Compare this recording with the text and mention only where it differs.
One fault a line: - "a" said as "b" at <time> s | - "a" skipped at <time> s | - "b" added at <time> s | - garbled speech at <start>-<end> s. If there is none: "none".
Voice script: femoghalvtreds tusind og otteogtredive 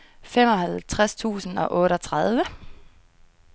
none